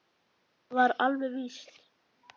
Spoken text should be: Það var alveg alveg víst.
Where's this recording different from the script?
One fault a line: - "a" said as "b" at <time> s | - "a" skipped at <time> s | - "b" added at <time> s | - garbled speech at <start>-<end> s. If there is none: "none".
- "alveg" skipped at 1.4 s